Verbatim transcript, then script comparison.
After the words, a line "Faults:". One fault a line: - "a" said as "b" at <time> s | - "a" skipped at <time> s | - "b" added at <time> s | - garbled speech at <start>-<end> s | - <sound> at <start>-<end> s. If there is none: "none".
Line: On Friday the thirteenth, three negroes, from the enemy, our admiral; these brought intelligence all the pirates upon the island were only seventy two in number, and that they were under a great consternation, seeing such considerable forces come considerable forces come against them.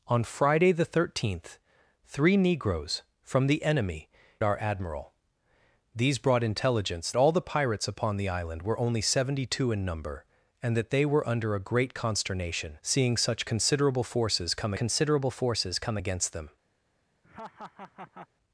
On Friday the thirteenth, three negroes, from the enemy, our admiral; these brought intelligence all the pirates upon the island were only seventy two in number, and that they were under a great consternation, seeing such considerable forces come considerable forces come against them.
Faults:
- laugh at 17.2-18.3 s